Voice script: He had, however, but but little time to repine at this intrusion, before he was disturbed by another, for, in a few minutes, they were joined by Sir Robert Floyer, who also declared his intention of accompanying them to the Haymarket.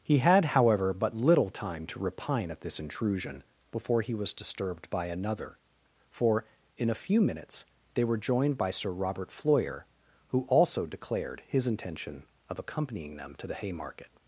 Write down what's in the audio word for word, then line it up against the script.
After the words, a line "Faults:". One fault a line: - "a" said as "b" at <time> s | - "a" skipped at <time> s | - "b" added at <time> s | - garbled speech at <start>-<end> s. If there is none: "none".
He had, however, but little time to repine at this intrusion, before he was disturbed by another, for, in a few minutes, they were joined by Sir Robert Floyer, who also declared his intention of accompanying them to the Haymarket.
Faults:
- "but" skipped at 1.1 s